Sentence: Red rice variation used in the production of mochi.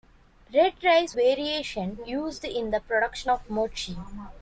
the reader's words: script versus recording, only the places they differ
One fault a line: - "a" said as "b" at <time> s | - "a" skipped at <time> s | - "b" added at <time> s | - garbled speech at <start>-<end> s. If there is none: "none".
none